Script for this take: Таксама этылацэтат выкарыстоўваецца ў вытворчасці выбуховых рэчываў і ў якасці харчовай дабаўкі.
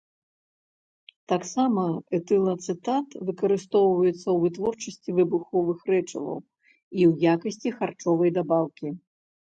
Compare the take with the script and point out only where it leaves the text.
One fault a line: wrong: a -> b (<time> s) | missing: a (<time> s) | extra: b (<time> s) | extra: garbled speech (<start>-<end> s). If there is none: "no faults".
no faults